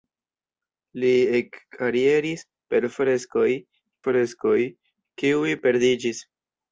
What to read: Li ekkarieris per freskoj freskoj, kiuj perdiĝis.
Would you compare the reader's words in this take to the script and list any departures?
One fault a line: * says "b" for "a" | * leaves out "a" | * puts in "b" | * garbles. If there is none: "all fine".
all fine